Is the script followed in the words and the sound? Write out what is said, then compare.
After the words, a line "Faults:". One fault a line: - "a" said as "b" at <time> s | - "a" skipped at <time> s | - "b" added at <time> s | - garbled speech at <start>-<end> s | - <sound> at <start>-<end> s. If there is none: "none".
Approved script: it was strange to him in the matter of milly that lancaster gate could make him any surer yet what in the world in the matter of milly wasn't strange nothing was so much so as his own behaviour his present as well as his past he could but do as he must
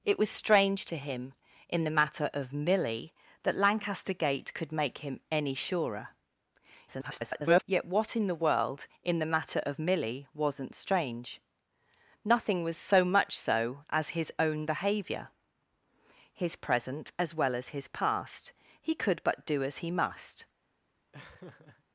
it was strange to him in the matter of milly that lancaster gate could make him any surer [garbled] yet what in the world in the matter of milly wasn't strange nothing was so much so as his own behaviour his present as well as his past he could but do as he must
Faults:
- garbled speech at 6.9-7.6 s
- laugh at 21.1-21.8 s